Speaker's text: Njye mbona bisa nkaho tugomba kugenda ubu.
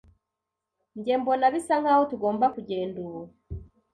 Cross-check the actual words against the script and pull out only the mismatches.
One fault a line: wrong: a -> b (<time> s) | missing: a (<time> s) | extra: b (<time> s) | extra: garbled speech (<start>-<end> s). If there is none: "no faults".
no faults